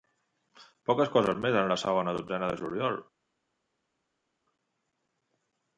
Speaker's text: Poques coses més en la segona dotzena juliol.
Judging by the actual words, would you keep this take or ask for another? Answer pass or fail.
fail